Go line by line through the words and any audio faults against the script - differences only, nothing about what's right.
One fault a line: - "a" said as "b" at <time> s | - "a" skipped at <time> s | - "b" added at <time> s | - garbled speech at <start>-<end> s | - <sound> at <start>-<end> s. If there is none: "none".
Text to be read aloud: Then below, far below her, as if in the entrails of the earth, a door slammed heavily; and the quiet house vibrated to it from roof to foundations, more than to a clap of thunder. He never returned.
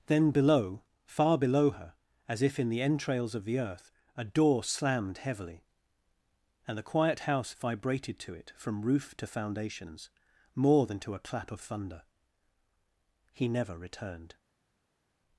none